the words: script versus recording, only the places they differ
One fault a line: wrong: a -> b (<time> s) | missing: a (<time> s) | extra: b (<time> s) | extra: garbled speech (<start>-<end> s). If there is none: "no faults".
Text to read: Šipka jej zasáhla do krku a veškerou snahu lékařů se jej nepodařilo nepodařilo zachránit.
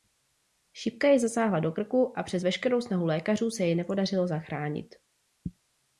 extra: přes (2.2 s)
missing: nepodařilo (4.3 s)